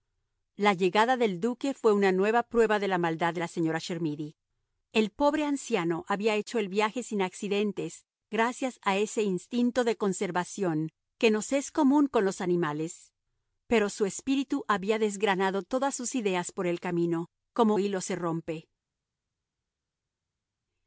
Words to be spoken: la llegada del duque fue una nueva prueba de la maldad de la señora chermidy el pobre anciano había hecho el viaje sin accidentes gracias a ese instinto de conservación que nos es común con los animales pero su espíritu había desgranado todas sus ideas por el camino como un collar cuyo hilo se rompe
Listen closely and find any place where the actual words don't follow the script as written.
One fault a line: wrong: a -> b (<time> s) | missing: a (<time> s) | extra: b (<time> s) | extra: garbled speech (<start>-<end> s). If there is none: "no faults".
missing: un collar cuyo (17.8 s)